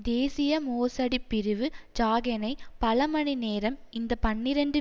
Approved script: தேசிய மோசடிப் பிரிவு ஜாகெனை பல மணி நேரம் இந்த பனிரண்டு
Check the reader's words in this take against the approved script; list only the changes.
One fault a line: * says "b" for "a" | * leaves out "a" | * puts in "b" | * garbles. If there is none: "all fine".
all fine